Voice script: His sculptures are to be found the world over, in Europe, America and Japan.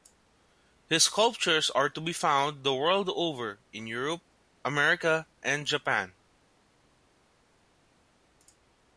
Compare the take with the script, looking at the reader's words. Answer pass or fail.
pass